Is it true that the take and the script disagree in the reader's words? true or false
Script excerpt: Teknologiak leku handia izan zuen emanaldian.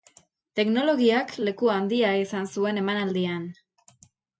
false